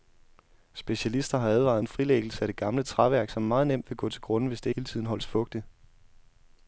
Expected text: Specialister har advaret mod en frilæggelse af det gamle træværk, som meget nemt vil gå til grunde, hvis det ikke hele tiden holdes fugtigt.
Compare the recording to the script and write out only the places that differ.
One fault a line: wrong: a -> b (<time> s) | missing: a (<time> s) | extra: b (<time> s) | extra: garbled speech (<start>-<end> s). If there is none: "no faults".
missing: mod (1.9 s)
missing: ikke (4.7 s)